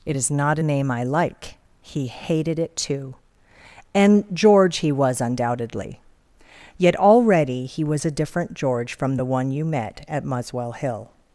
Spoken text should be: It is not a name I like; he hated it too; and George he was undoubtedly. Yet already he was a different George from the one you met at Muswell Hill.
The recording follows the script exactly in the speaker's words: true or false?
true